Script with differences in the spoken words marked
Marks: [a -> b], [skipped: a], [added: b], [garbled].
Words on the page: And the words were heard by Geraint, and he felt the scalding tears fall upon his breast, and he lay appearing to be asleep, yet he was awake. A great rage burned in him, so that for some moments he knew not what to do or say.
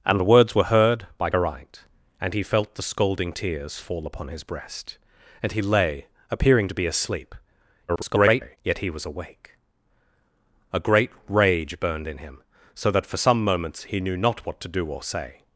And the words were heard by Geraint, and he felt the scalding tears fall upon his breast, and he lay appearing to be asleep, [garbled] yet he was awake. A great rage burned in him, so that for some moments he knew not what to do or say.